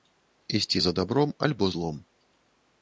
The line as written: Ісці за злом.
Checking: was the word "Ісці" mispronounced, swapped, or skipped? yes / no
no